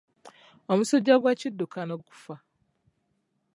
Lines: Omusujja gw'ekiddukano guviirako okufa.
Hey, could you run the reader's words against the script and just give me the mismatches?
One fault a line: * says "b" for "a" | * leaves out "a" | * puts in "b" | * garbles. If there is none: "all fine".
* leaves out "guviirako"